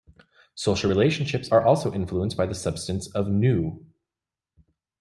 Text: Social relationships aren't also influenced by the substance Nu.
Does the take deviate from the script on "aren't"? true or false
true